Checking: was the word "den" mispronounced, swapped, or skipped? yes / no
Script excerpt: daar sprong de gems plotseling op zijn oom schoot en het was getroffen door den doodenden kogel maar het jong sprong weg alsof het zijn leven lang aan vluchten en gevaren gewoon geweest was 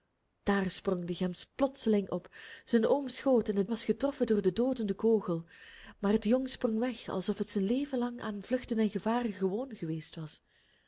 no